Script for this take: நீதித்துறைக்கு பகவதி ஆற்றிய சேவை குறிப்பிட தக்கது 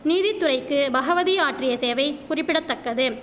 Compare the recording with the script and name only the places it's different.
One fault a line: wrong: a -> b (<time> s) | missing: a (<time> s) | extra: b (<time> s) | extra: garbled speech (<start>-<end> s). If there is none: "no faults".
no faults